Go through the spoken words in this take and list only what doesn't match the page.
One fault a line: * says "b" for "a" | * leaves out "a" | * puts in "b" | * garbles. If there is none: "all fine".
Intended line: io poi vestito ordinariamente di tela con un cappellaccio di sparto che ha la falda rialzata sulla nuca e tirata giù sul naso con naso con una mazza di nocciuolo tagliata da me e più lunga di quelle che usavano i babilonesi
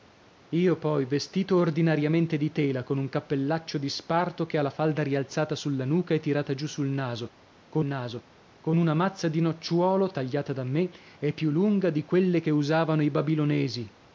all fine